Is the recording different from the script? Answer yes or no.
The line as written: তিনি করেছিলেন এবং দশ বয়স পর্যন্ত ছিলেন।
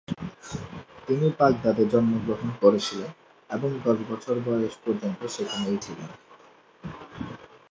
yes